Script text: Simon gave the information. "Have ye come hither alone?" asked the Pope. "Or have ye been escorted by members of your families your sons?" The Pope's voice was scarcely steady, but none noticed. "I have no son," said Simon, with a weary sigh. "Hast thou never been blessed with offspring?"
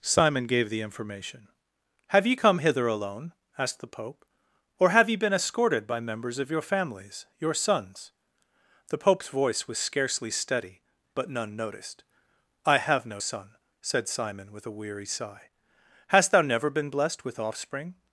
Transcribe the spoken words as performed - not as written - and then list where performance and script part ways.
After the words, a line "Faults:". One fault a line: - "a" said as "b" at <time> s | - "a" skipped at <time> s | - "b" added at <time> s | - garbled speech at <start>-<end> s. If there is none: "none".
Simon gave the information. "Have ye come hither alone?" asked the Pope. "Or have ye been escorted by members of your families your sons?" The Pope's voice was scarcely steady, but none noticed. "I have no son," said Simon, with a weary sigh. "Hast thou never been blessed with offspring?"
Faults:
none